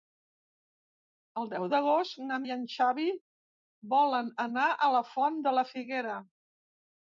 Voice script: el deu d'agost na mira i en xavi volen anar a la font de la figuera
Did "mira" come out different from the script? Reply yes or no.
yes